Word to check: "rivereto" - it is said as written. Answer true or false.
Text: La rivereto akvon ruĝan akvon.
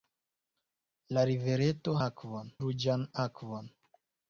true